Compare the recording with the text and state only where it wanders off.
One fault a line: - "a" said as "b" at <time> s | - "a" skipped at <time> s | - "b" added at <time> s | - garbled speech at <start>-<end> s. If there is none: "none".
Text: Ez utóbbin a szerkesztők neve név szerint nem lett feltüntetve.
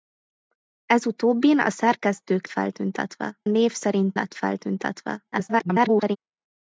- "neve" said as "feltüntetve" at 2.5 s
- "nem" skipped at 4.2 s
- garbled speech at 5.3-6.2 s